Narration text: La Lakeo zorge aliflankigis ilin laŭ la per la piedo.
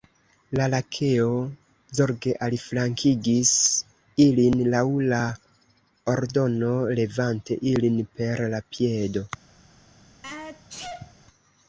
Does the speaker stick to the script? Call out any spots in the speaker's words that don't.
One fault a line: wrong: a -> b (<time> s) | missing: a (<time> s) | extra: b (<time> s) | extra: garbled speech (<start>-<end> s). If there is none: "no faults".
extra: ordono levante ilin (6.2 s)